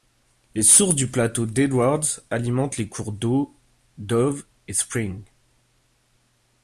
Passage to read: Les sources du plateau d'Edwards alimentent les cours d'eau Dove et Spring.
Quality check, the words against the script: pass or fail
pass